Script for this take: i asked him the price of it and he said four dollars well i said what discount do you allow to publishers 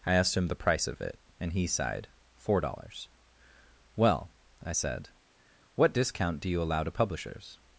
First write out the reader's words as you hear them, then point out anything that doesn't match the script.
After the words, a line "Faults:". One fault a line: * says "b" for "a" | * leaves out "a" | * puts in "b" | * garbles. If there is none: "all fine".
i asked him the price of it and he sighed four dollars well i said what discount do you allow to publishers
Faults:
* says "sighed" for "said"